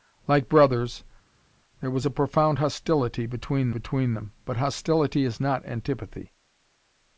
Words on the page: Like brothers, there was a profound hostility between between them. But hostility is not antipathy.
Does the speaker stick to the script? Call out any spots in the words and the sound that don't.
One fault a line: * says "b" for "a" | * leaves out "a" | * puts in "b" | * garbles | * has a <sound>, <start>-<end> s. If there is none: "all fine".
all fine